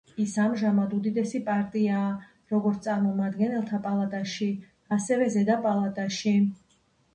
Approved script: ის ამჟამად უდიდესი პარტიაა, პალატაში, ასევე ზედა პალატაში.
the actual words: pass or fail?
fail